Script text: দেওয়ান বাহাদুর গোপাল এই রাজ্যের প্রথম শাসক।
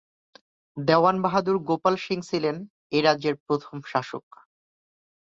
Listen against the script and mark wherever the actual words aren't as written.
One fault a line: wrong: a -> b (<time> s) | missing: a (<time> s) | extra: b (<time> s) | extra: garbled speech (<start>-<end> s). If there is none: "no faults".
extra: সিং ছিলেন (1.9 s)